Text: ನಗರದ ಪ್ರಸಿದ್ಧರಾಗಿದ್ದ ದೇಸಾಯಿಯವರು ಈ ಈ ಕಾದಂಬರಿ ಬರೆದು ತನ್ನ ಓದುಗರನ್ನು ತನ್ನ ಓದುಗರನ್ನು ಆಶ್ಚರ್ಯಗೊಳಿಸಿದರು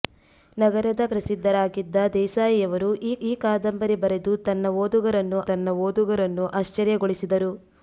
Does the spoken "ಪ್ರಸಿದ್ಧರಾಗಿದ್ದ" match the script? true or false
true